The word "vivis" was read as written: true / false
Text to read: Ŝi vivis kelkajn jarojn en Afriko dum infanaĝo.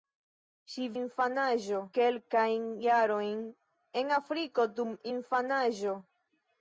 false